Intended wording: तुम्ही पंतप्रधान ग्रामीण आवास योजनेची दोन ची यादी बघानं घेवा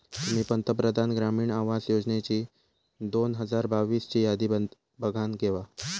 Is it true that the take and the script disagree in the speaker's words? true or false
true